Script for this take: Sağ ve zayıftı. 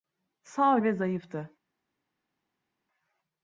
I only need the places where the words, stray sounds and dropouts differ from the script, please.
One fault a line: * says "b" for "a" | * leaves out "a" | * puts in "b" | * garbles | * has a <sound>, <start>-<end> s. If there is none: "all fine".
all fine